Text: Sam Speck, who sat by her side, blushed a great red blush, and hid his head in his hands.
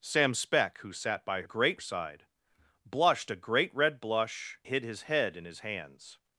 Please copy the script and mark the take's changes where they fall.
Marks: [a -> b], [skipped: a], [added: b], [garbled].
Sam Speck, who sat by [her -> great] side, blushed a great red blush, [skipped: and] hid his head in his hands.